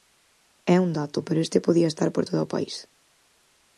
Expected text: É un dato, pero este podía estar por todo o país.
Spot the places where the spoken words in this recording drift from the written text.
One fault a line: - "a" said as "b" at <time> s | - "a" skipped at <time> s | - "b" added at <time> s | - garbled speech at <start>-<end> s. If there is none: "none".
none